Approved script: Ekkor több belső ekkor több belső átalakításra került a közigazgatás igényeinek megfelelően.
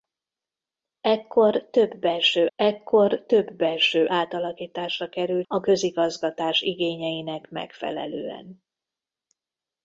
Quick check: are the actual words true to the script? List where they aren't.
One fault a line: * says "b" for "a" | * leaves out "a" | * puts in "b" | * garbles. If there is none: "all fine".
all fine